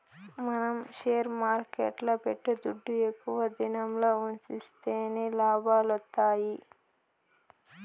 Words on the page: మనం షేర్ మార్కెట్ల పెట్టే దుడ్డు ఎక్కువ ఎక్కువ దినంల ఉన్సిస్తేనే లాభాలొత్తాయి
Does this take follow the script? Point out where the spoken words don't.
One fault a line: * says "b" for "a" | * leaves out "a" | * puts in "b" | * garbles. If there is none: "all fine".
* leaves out "ఎక్కువ"